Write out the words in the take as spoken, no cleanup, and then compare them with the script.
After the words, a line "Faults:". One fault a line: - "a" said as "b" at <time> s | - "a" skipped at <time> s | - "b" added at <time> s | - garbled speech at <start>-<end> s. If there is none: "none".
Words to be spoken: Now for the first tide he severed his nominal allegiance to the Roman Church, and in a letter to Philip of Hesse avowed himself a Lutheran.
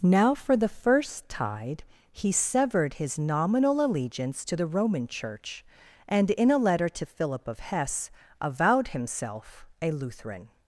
Now for the first tide he severed his nominal allegiance to the Roman Church, and in a letter to Philip of Hesse avowed himself a Lutheran.
Faults:
none